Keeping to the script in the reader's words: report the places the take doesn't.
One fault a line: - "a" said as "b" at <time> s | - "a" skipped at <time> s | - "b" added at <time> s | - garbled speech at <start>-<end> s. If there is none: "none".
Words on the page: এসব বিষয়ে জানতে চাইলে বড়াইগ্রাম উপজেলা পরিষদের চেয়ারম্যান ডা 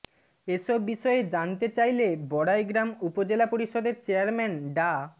none